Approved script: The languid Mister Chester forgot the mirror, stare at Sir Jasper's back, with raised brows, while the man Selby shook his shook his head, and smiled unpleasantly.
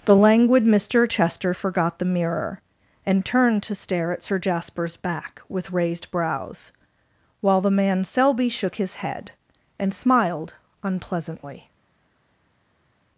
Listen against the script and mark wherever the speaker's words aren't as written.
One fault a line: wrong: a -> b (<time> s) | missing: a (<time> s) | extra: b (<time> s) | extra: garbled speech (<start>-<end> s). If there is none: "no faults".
extra: and turned to (3.1 s)
missing: shook his (9.0 s)